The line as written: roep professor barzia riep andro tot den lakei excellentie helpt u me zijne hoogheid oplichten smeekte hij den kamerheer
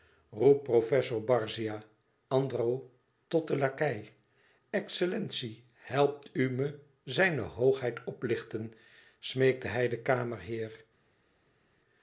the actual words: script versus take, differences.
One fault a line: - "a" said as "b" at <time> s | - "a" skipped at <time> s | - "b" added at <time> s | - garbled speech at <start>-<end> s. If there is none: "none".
- "riep" skipped at 1.8 s